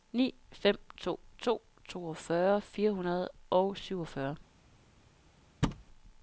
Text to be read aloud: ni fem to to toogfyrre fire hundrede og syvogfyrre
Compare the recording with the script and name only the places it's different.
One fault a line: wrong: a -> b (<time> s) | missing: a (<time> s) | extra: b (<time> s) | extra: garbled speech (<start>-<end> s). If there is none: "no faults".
no faults